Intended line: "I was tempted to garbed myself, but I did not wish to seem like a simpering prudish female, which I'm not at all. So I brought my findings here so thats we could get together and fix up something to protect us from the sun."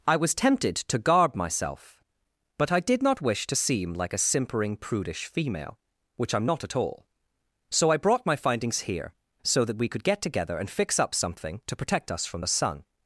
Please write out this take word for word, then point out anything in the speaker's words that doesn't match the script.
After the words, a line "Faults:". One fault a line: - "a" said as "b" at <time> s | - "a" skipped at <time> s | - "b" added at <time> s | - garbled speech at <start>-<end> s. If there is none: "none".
"I was tempted to garb myself, but I did not wish to seem like a simpering prudish female, which I'm not at all. So I brought my findings here so that we could get together and fix up something to protect us from the sun."
Faults:
- "garbed" said as "garb" at 1.0 s
- "thats" said as "that" at 9.6 s